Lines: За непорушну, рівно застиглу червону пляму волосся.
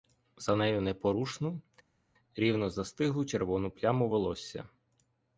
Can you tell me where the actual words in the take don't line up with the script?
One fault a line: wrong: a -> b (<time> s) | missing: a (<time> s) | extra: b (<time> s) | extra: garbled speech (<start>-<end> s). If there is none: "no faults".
extra: нею (0.6 s)